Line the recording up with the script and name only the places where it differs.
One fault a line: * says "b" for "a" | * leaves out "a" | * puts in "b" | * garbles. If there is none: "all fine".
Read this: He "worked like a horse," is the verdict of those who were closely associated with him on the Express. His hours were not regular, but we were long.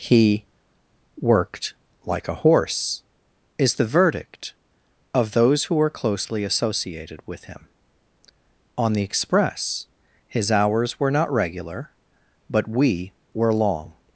all fine